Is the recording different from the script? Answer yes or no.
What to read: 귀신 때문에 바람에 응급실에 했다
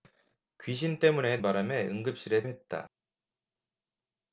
no